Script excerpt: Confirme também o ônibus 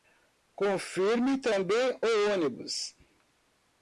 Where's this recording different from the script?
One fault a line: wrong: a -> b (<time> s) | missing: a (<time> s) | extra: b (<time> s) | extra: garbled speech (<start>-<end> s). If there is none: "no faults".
no faults